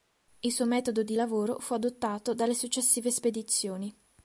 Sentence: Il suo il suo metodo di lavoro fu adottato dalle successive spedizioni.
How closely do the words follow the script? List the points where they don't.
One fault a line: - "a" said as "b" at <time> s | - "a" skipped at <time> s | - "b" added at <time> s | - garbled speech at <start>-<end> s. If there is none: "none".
- "il suo" skipped at 0.7 s